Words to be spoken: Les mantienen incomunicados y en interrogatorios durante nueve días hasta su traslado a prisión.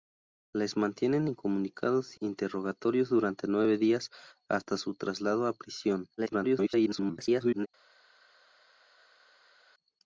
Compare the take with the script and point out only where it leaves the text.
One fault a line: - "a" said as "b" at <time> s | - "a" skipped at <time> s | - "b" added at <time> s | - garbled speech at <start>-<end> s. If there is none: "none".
- "en" skipped at 2.2 s
- garbled speech at 6.2-7.7 s